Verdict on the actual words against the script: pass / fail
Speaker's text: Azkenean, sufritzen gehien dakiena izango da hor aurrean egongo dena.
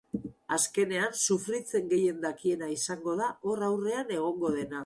pass